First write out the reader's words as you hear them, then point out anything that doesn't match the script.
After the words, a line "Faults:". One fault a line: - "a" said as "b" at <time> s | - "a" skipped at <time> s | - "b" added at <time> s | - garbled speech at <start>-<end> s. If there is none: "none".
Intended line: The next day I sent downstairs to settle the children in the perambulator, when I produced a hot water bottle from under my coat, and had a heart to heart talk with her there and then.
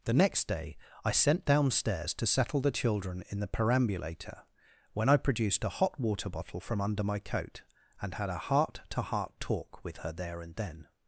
The next day I sent downstairs to settle the children in the perambulator, when I produced a hot water bottle from under my coat, and had a heart to heart talk with her there and then.
Faults:
none